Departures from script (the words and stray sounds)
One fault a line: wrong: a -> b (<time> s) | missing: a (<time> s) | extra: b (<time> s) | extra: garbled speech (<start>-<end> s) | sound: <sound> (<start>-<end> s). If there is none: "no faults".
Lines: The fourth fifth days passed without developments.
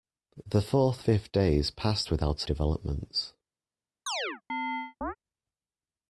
sound: chirp (4.1-5.2 s)